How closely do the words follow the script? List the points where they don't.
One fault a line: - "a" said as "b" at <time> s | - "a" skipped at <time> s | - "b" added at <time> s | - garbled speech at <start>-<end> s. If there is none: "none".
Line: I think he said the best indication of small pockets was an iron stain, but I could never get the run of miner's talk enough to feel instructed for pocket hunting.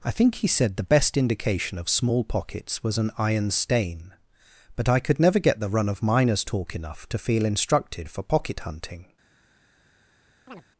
none